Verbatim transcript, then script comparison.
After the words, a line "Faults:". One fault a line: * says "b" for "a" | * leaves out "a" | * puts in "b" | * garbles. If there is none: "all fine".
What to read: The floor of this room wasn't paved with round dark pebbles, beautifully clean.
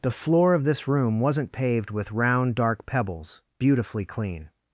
The floor of this room wasn't paved with round dark pebbles, beautifully clean.
Faults:
all fine